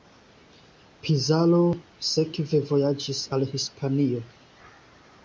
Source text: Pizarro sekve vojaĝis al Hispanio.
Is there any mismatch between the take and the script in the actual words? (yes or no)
no